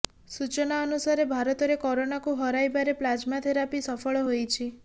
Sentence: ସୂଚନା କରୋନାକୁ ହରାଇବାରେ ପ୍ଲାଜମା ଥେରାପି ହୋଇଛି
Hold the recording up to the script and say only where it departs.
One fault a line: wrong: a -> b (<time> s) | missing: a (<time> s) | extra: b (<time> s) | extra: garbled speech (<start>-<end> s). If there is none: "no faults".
extra: ଅନୁସାରେ ଭାରତରେ (0.8 s)
extra: ସଫଳ (3.9 s)